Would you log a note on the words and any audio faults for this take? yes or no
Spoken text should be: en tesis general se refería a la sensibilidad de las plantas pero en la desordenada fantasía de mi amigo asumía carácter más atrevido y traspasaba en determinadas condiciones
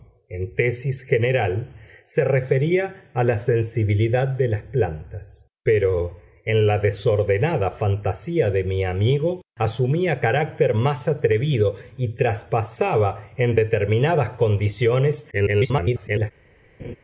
yes